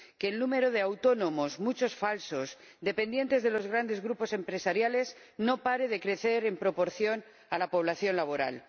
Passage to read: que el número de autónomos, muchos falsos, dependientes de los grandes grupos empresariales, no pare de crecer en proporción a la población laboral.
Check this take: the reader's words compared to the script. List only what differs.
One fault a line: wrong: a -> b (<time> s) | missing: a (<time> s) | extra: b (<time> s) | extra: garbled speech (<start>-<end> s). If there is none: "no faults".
no faults